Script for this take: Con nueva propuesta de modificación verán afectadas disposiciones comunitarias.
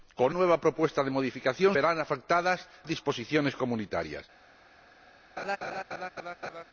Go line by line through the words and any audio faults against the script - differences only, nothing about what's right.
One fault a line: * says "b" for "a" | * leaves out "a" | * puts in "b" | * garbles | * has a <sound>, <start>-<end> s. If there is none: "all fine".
* has a laugh, 5.4-6.6 s